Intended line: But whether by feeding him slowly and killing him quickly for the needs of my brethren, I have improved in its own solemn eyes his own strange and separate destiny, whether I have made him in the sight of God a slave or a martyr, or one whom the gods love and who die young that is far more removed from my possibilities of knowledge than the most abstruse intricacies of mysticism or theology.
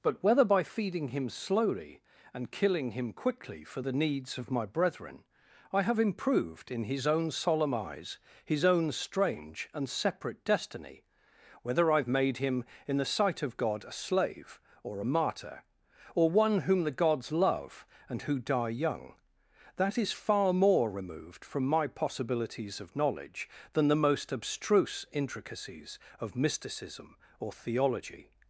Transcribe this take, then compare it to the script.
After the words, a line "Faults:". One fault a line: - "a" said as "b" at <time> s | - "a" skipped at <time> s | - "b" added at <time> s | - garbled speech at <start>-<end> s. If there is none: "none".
But whether by feeding him slowly and killing him quickly for the needs of my brethren, I have improved in his own solemn eyes his own strange and separate destiny, whether I have made him in the sight of God a slave or a martyr, or one whom the gods love and who die young that is far more removed from my possibilities of knowledge than the most abstruse intricacies of mysticism or theology.
Faults:
- "its" said as "his" at 6.9 s